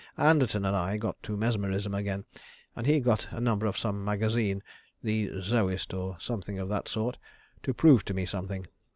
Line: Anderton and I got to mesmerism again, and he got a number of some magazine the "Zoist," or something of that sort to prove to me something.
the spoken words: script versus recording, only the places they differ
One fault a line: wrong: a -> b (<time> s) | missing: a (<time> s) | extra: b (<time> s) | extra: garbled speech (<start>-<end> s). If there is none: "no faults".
no faults